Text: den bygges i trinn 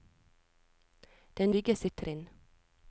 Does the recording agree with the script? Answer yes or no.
yes